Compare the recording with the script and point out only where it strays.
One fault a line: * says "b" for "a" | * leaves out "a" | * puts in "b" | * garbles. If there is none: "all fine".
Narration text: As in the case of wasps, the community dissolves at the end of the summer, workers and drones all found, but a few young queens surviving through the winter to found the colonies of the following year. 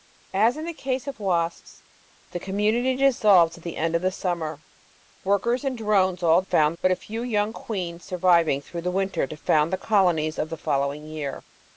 all fine